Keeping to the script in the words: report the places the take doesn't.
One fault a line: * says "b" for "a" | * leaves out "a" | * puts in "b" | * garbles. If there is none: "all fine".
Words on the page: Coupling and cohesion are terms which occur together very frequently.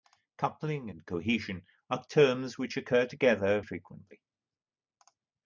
* leaves out "very"